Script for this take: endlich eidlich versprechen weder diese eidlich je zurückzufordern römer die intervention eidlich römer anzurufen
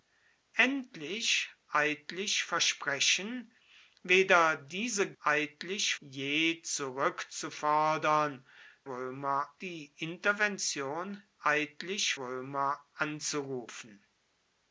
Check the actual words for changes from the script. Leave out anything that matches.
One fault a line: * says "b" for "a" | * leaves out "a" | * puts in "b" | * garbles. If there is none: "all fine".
all fine